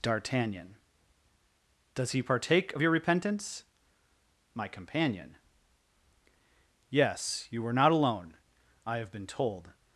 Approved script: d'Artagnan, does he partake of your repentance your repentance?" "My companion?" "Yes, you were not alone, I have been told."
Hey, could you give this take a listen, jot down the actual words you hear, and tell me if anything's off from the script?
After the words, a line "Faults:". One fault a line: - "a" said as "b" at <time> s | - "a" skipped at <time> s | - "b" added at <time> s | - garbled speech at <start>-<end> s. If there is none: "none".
d'Artagnan, does he partake of your repentance?" "My companion?" "Yes, you were not alone, I have been told."
Faults:
- "your repentance" skipped at 3.6 s